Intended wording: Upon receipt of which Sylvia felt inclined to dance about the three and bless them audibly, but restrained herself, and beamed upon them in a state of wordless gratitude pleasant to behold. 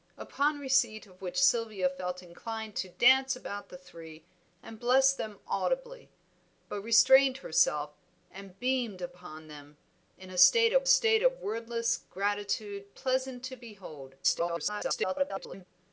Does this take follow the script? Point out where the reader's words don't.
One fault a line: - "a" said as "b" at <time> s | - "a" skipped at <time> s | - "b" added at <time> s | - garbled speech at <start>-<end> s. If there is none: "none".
- "state of" added at 10.9 s
- garbled speech at 14.2-15.7 s